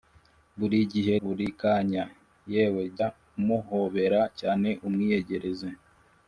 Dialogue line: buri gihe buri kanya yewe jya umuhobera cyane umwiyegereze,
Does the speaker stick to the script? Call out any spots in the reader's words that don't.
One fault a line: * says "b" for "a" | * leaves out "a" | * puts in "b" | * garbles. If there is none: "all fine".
all fine